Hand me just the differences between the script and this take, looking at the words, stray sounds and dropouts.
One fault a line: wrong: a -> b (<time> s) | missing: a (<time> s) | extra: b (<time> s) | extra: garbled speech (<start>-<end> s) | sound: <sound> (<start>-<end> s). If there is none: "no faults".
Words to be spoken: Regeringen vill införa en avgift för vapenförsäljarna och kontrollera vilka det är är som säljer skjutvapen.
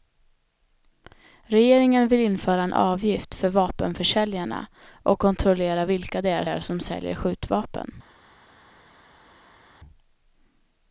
no faults